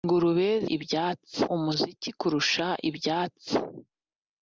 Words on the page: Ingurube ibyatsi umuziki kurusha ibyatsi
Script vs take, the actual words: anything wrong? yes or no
no